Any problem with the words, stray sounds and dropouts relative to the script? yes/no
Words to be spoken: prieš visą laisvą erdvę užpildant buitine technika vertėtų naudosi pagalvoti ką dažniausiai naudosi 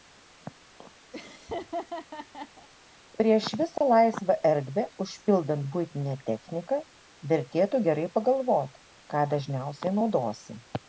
yes